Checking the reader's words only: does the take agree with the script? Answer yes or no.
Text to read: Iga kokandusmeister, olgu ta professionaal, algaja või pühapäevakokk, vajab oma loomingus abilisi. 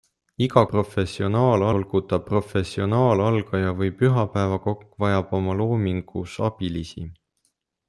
no